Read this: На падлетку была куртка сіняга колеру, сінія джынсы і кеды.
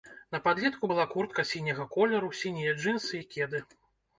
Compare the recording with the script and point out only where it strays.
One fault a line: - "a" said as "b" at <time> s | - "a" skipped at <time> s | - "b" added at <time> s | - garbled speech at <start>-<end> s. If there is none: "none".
none